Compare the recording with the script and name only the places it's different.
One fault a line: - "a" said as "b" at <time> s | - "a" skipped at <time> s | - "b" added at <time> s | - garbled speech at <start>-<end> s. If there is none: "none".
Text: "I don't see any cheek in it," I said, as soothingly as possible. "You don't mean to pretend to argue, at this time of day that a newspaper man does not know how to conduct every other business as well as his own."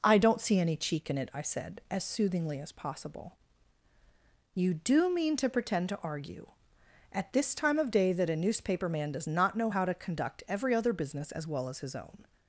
- "don't" said as "do" at 4.7 s